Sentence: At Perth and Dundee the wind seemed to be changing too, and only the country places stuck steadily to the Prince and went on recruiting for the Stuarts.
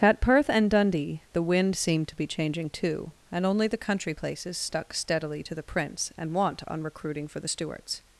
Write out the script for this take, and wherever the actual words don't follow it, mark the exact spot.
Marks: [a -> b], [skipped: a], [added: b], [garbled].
At Perth and Dundee the wind seemed to be changing too, and only the country places stuck steadily to the Prince and [went -> want] on recruiting for the Stuarts.